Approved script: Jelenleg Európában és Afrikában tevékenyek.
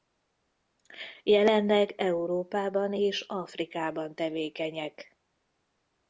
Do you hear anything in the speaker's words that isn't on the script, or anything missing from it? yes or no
no